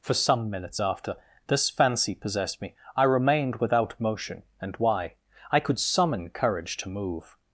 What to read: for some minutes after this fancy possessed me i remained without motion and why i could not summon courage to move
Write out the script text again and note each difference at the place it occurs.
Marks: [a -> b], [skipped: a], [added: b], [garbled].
for some minutes after this fancy possessed me i remained without motion and why i could [skipped: not] summon courage to move